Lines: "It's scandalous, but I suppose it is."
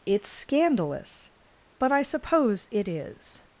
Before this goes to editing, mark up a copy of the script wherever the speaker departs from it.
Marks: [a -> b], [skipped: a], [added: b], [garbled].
"It's scandalous, but I suppose it is."